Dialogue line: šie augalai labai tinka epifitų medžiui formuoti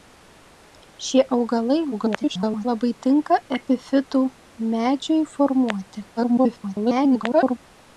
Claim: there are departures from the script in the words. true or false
true